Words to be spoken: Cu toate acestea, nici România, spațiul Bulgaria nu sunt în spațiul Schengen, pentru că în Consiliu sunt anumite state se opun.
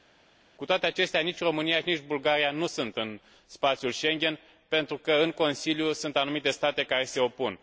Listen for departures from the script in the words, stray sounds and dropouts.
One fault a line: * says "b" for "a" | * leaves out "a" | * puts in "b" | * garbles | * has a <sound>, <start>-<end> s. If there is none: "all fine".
* says "nici" for "spațiul"
* puts in "care"